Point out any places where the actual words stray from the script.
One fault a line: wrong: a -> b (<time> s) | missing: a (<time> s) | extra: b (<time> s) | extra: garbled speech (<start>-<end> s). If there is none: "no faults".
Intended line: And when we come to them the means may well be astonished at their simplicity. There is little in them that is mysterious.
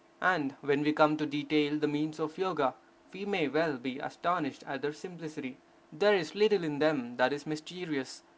wrong: them -> detail (1.2 s)
extra: of Yoga we (2.2 s)